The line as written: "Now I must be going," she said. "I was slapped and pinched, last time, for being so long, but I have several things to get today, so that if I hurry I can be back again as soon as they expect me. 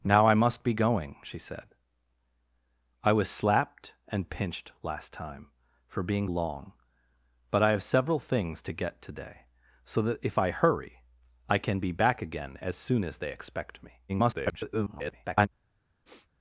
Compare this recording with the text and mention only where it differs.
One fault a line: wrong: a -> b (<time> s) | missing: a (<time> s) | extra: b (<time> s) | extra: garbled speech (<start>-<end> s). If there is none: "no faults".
missing: so (6.3 s)
extra: garbled speech (14.1-15.5 s)